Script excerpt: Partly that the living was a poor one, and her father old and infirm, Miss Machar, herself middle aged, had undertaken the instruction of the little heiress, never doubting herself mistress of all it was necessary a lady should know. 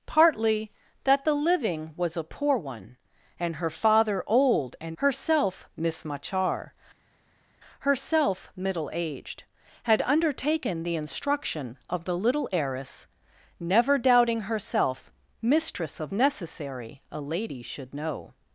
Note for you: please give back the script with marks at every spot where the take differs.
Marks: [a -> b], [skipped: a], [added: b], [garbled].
Partly that the living was a poor one, and her father old and [infirm, -> herself] Miss Machar, herself middle aged, had undertaken the instruction of the little heiress, never doubting herself mistress of [skipped: all it was] necessary a lady should know.